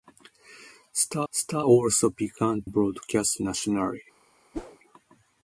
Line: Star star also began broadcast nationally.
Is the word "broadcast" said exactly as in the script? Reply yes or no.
yes